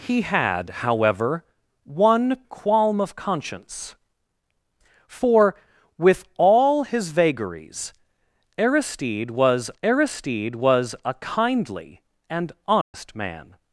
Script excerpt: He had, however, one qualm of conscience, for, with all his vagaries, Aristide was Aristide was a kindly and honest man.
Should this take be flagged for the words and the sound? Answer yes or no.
yes